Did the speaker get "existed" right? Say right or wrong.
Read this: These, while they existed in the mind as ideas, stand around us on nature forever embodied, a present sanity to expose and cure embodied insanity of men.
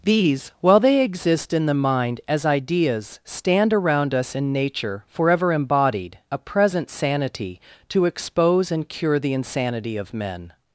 wrong